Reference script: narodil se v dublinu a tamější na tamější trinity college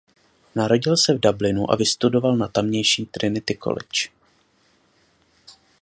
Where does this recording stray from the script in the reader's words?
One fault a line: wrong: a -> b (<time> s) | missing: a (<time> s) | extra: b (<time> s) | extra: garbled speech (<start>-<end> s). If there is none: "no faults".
wrong: tamější -> vystudoval (1.7 s)